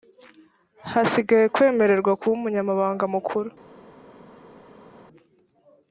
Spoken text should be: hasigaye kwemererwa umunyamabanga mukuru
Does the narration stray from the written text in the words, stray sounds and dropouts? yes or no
yes